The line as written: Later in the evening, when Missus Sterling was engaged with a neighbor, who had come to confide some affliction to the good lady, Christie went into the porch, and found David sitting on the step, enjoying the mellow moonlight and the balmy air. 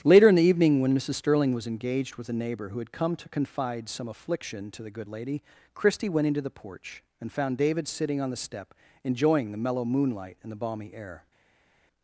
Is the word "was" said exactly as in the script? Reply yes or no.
yes